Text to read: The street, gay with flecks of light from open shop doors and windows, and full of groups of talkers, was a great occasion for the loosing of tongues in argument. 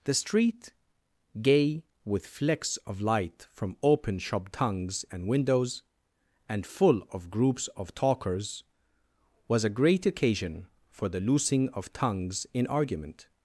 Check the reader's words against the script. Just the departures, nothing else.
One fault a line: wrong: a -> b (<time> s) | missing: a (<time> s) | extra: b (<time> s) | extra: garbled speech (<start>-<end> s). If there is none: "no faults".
wrong: doors -> tongues (4.5 s)